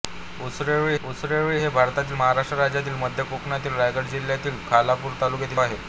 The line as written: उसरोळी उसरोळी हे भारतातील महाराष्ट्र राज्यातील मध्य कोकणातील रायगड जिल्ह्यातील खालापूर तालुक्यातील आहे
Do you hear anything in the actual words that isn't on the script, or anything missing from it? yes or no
no